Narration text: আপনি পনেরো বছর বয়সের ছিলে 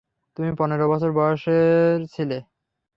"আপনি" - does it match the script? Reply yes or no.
no